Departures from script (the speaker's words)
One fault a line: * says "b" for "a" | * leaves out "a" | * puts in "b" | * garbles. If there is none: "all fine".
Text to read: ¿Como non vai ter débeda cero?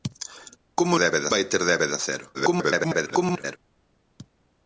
* says "débeda" for "non"
* garbles